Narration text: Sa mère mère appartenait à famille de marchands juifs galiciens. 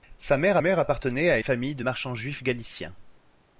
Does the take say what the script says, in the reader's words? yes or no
yes